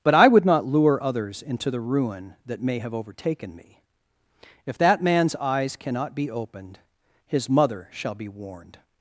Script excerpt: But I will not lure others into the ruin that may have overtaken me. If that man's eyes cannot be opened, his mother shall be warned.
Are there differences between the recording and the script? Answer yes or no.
yes